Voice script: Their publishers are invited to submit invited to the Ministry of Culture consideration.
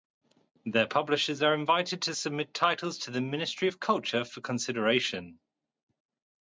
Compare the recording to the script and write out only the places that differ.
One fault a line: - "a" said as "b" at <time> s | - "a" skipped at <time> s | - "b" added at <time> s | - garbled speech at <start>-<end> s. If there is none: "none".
- "invited" said as "titles" at 2.5 s
- "for" added at 4.2 s